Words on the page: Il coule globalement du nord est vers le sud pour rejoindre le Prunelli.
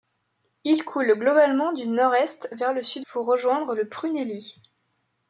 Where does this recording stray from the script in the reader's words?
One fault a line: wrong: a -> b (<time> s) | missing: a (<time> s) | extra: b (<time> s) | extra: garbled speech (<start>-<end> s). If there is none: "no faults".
no faults